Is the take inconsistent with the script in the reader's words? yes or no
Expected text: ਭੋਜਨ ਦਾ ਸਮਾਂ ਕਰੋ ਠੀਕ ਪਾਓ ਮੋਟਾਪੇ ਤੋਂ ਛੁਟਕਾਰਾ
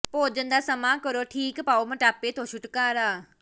no